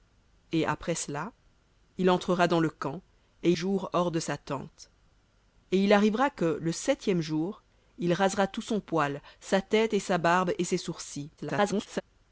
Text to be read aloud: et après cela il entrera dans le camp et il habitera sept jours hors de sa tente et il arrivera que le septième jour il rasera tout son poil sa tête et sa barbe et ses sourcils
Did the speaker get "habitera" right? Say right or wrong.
wrong